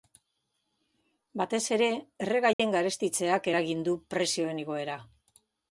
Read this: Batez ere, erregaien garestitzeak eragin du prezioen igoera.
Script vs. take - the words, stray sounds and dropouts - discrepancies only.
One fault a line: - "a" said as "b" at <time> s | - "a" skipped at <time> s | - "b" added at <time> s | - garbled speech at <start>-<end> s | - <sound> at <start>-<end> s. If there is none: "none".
- dropout at 2.5-2.6 s